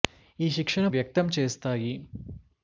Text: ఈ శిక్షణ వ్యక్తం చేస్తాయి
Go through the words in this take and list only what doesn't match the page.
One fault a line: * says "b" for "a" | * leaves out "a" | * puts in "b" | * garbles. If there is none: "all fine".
all fine